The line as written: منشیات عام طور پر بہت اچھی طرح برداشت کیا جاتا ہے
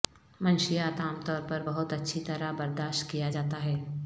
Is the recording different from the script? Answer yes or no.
no